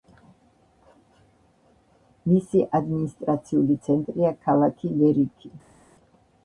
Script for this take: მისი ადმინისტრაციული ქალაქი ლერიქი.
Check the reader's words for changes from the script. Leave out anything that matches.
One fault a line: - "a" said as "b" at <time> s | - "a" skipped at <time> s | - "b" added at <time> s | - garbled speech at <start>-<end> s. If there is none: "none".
- "ცენტრია" added at 3.9 s